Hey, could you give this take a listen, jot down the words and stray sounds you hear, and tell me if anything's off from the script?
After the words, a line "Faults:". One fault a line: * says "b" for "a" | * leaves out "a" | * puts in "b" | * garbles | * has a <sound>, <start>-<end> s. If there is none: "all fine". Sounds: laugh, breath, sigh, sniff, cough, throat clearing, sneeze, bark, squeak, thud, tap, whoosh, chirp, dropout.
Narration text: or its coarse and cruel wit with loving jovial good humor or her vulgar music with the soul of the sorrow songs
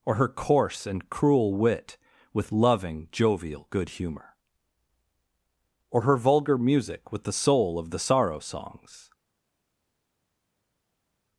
or her coarse and cruel wit with loving jovial good humor or her vulgar music with the soul of the sorrow songs
Faults:
* says "her" for "its"